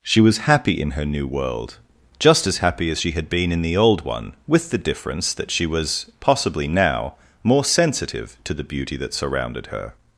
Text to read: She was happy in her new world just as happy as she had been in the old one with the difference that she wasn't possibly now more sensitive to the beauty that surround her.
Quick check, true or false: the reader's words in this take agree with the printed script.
false